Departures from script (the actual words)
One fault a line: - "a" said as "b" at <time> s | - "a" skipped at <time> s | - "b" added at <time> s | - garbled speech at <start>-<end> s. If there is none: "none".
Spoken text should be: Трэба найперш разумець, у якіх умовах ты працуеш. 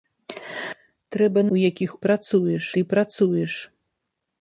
- "найперш разумець" skipped at 1.4 s
- "умовах" said as "працуеш" at 2.1 s